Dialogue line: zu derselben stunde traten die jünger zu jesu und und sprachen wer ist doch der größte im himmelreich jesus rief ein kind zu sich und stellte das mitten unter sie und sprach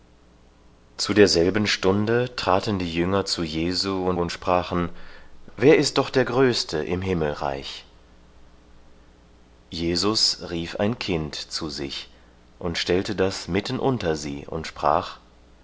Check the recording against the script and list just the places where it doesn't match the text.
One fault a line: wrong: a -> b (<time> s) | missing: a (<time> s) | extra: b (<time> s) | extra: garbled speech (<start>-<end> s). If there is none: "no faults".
no faults